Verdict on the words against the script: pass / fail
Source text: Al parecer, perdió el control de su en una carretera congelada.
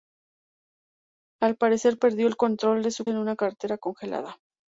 pass